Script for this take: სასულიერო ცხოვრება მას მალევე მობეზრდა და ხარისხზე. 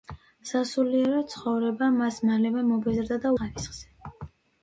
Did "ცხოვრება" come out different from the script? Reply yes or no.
no